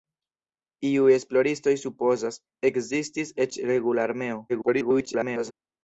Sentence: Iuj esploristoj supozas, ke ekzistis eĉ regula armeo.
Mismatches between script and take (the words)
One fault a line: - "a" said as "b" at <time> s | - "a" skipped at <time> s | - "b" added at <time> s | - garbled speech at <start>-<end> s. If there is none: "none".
- "ke" skipped at 2.4 s
- garbled speech at 4.5-5.5 s